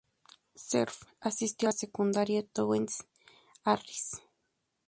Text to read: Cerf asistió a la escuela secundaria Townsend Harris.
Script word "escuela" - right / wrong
wrong